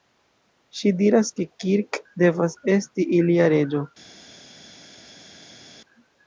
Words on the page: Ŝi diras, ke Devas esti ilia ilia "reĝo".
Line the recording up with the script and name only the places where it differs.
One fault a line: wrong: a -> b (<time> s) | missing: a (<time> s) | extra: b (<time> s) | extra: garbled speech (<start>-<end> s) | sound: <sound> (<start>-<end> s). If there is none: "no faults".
extra: Kirk (1.6 s)
missing: ilia (3.6 s)